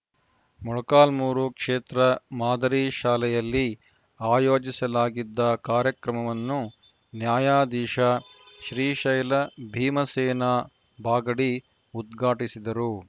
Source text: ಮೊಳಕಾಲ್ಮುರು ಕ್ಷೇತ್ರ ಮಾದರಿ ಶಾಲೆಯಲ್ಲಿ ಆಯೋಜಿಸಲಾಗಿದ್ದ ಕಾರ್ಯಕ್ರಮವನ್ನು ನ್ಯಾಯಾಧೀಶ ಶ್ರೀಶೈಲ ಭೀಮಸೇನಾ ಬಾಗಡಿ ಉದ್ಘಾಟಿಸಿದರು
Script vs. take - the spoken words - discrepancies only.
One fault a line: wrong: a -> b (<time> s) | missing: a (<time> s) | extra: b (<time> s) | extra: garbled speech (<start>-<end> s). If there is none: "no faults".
no faults